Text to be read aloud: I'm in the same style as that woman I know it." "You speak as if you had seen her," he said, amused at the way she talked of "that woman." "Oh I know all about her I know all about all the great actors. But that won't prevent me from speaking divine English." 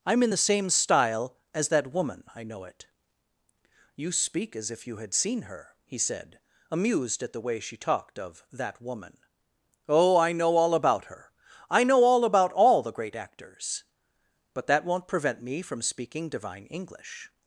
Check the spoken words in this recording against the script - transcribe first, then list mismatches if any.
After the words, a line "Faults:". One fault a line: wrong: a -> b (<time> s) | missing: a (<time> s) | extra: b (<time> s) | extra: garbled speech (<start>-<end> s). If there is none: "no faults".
I'm in the same style as that woman I know it." "You speak as if you had seen her," he said, amused at the way she talked of "that woman." "Oh I know all about her I know all about all the great actors. But that won't prevent me from speaking divine English."
Faults:
no faults